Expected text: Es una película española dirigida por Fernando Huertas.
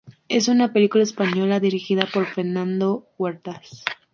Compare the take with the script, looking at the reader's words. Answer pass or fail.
pass